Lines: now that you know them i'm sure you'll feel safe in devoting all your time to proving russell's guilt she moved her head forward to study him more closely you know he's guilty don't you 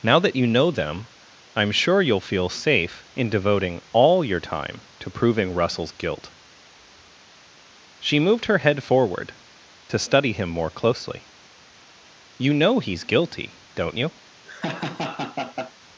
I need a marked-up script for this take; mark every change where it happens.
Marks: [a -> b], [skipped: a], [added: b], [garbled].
now that you know them i'm sure you'll feel safe in devoting all your time to proving russell's guilt she moved her head forward to study him more closely you know he's guilty don't you